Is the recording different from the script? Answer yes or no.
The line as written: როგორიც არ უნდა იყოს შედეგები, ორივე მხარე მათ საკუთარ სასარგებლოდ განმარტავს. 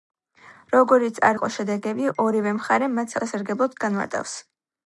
yes